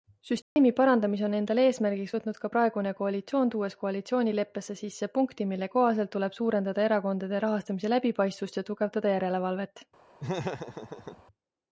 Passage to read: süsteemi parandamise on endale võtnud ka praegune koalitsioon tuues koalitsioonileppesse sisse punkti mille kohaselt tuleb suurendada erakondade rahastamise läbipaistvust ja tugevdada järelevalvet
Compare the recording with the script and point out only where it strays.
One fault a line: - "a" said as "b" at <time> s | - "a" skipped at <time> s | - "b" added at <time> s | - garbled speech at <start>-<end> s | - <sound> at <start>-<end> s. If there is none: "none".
- dropout at 0.4-0.6 s
- "eesmärgiks" added at 1.7 s
- laugh at 10.2-11.2 s